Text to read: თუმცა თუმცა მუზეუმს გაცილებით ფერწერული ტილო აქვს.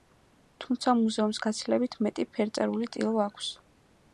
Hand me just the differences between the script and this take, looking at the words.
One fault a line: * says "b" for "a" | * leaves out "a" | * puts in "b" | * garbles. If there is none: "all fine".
* leaves out "თუმცა"
* puts in "მეტი"